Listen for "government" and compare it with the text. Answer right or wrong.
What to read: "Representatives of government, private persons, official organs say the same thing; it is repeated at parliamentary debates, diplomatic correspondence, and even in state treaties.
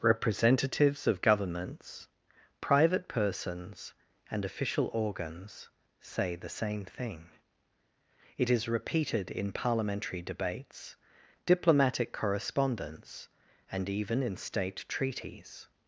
wrong